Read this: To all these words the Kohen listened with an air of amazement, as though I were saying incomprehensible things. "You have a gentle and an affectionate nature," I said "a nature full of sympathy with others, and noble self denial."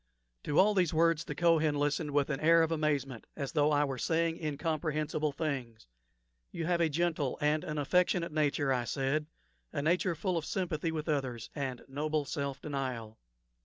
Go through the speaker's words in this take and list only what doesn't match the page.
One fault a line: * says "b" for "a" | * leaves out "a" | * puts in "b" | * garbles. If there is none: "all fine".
all fine